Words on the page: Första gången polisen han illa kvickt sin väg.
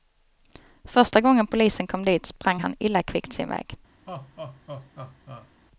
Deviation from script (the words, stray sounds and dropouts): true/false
true